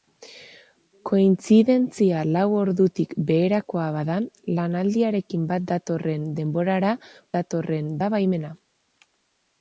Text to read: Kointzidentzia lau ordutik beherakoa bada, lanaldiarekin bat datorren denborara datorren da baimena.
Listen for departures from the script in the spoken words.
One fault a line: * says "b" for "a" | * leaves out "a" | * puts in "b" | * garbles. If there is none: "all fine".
all fine